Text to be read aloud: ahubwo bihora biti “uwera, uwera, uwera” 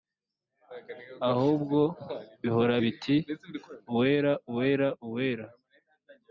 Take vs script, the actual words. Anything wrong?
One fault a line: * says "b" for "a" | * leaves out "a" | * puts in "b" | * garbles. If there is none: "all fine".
all fine